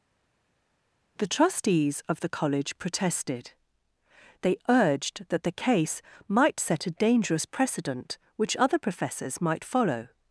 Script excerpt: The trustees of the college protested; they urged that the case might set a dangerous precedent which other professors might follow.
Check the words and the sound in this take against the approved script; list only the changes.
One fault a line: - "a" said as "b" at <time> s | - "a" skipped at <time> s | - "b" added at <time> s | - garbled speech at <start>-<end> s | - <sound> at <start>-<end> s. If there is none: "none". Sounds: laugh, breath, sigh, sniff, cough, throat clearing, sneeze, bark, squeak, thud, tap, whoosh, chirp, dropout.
none